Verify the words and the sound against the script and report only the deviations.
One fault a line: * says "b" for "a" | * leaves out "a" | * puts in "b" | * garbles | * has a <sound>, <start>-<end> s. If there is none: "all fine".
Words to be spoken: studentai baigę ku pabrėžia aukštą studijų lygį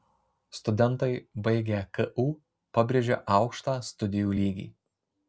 all fine